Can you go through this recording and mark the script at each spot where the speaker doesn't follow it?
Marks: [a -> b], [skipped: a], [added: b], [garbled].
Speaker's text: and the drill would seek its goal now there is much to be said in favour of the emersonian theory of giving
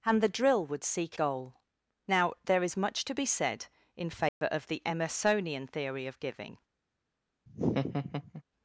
and the drill would seek [skipped: its] goal now there is much to be said in favour of the emersonian theory of giving